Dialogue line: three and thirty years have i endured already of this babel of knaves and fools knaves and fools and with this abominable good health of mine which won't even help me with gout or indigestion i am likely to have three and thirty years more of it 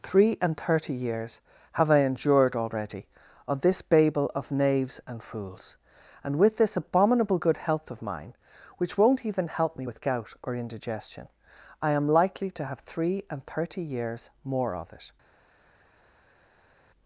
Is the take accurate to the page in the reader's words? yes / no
no